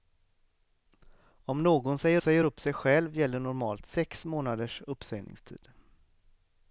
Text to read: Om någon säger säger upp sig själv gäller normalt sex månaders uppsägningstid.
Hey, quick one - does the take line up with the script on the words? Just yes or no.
yes